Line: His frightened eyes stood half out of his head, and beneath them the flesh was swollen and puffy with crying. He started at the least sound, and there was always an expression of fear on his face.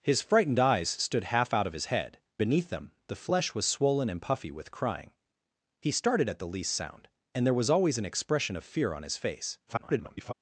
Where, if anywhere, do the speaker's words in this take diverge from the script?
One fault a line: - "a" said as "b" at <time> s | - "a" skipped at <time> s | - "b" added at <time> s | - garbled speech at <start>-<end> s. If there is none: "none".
- "and" skipped at 2.2 s
- garbled speech at 9.7-10.3 s